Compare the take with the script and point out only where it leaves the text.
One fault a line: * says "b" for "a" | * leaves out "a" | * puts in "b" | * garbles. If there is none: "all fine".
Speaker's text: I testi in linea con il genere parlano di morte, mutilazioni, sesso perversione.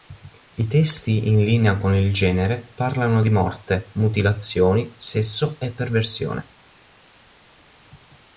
* puts in "e"